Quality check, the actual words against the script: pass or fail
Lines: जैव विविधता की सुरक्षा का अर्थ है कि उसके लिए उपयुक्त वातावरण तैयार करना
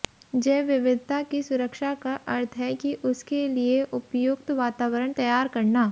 pass